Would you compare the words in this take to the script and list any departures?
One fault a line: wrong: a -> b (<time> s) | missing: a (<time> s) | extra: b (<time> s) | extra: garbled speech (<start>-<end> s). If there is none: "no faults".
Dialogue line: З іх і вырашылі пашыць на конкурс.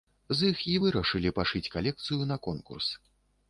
extra: калекцыю (1.7 s)